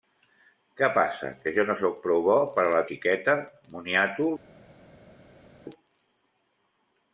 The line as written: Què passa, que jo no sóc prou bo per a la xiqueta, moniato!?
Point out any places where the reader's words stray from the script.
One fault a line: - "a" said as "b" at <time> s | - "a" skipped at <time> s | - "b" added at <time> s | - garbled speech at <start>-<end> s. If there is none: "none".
none